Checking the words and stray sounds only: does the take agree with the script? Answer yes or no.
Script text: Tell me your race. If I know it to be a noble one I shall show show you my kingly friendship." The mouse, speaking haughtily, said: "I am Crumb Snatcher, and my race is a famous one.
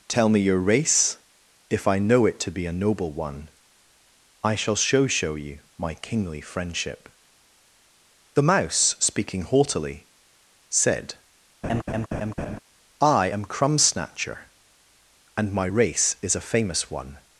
no